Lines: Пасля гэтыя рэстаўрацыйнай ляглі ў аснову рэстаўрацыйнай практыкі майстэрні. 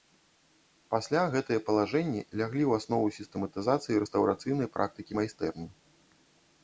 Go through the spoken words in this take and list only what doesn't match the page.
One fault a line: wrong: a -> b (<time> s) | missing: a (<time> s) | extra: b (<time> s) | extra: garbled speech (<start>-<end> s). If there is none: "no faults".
wrong: рэстаўрацыйнай -> палажэнні (1.7 s)
extra: сістэматызацыі (3.2 s)